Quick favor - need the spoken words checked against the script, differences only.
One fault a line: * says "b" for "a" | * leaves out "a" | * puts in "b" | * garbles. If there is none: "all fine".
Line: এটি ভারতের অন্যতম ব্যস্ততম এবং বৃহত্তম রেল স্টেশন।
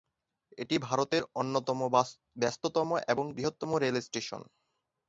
all fine